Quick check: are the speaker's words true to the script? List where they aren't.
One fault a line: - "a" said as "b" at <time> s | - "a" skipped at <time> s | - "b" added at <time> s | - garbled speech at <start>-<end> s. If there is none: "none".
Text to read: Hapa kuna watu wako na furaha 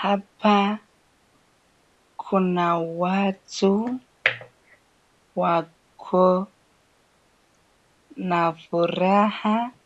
none